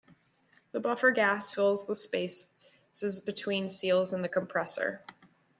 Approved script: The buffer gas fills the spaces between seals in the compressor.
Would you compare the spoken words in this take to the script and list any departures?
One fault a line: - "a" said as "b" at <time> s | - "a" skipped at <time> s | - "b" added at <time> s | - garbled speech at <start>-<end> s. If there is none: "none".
none